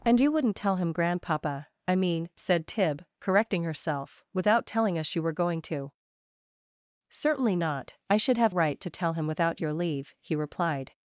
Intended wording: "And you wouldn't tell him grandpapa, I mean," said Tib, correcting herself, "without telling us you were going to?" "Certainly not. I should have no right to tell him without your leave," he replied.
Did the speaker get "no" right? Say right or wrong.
wrong